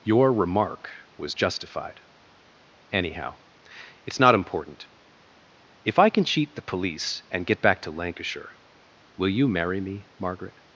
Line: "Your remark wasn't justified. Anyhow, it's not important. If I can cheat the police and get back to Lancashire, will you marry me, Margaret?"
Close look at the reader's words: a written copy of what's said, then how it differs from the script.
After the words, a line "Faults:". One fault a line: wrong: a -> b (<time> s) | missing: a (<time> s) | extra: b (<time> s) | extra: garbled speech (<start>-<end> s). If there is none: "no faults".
"Your remark was justified. Anyhow, it's not important. If I can cheat the police and get back to Lancashire, will you marry me, Margaret?"
Faults:
wrong: wasn't -> was (1.2 s)